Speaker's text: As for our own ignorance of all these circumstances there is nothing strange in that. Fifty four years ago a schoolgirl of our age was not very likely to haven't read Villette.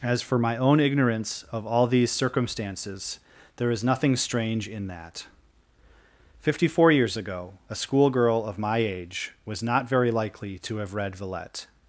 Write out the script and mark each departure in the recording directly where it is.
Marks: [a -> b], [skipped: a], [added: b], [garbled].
As for [our -> my] own ignorance of all these circumstances there is nothing strange in that. Fifty four years ago a schoolgirl of [our -> my] age was not very likely to [haven't -> have] read Villette.